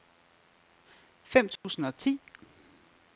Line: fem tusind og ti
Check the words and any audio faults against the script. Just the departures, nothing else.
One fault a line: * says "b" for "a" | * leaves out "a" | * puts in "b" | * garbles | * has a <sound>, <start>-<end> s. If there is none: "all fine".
* has a dropout, 1.6-1.6 s